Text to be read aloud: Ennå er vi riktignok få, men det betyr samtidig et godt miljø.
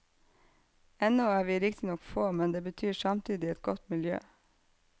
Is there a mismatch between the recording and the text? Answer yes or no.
no